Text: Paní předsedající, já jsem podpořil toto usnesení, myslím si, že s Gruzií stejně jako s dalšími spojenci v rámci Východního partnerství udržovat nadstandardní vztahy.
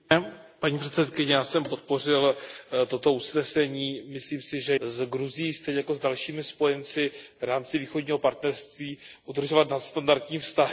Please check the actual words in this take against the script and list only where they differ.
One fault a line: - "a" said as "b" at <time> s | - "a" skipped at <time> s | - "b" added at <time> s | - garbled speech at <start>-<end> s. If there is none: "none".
none